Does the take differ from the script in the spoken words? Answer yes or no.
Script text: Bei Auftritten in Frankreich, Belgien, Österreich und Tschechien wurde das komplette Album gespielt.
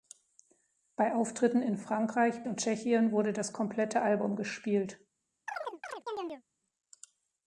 yes